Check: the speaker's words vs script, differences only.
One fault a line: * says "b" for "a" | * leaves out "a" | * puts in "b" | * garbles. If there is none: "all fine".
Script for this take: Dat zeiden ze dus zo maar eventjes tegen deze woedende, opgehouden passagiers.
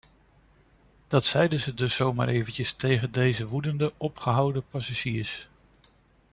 all fine